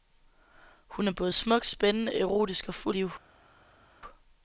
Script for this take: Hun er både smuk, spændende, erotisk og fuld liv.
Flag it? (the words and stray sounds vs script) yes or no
no